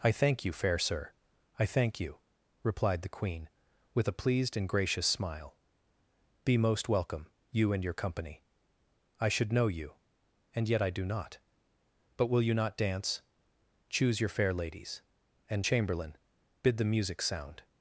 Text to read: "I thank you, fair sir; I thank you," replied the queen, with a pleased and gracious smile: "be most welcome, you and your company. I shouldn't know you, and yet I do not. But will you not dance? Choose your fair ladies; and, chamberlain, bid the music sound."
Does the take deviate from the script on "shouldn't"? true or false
true